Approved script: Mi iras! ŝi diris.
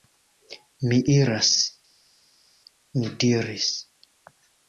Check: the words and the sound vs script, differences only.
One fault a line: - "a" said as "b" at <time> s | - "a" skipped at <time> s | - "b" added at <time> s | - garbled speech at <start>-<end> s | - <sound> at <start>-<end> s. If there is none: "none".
- "ŝi" said as "mi" at 3.0 s